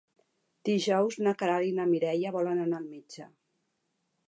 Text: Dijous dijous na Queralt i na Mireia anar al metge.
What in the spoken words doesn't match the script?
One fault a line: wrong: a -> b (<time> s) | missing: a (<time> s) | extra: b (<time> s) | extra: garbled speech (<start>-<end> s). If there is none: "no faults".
missing: dijous (1.2 s)
extra: volen (2.4 s)